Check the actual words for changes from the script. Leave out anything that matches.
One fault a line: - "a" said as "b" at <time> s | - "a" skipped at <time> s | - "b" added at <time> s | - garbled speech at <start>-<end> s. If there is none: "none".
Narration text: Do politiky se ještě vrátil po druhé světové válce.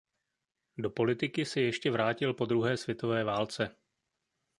none